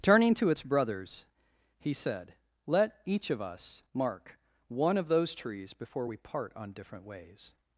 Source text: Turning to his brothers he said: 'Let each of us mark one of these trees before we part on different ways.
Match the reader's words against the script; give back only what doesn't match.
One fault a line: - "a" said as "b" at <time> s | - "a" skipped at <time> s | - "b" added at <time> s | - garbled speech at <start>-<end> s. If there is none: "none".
- "his" said as "its" at 0.5 s
- "these" said as "those" at 5.1 s